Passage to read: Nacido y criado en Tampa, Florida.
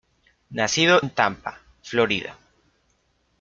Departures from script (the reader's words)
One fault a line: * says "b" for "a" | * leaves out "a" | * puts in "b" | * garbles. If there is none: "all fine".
* leaves out "y criado"